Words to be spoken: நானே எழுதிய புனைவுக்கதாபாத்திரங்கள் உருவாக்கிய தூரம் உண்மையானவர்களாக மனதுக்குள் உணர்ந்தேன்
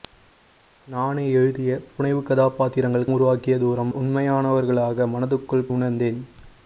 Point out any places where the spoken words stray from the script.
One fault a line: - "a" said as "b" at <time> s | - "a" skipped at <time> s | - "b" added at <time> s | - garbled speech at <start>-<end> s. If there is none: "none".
none